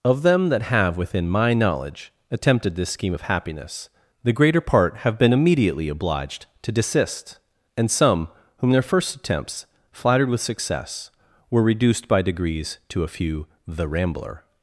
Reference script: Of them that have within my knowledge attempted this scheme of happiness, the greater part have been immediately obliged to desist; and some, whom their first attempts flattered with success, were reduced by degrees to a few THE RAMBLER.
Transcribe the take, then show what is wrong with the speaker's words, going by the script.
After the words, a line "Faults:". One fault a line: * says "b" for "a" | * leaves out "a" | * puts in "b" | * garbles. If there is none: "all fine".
Of them that have within my knowledge attempted this scheme of happiness, the greater part have been immediately obliged to desist; and some, whom their first attempts flattered with success, were reduced by degrees to a few THE RAMBLER.
Faults:
all fine